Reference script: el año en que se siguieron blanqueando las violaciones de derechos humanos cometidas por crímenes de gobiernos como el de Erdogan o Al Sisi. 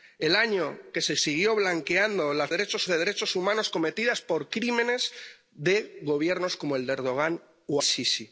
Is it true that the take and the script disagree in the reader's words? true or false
true